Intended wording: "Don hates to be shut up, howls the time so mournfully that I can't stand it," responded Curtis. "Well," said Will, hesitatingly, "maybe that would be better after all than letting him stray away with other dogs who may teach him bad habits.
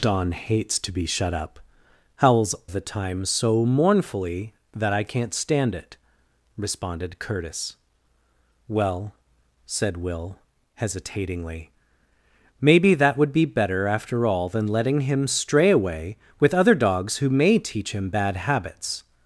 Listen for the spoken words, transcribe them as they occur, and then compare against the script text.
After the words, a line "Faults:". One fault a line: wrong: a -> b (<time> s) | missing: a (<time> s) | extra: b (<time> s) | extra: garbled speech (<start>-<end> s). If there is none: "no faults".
"Don hates to be shut up, howls the time so mournfully that I can't stand it," responded Curtis. "Well," said Will, hesitatingly, "maybe that would be better after all than letting him stray away with other dogs who may teach him bad habits.
Faults:
no faults